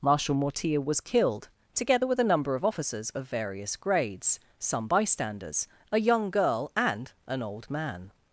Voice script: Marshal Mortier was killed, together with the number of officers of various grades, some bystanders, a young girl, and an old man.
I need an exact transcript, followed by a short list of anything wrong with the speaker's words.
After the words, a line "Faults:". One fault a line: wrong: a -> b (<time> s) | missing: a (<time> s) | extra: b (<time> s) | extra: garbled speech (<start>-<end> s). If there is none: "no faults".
Marshal Mortier was killed, together with a number of officers of various grades, some bystanders, a young girl, and an old man.
Faults:
wrong: the -> a (2.2 s)